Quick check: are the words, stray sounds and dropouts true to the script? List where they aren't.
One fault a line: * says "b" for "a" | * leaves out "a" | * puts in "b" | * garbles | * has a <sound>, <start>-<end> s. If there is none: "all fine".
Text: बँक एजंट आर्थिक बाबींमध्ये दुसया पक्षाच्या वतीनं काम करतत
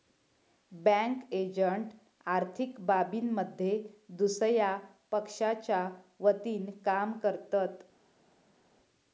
all fine